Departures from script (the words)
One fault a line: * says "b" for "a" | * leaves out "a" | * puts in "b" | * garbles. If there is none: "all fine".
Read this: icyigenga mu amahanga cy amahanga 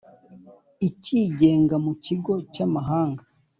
* says "kigo" for "amahanga"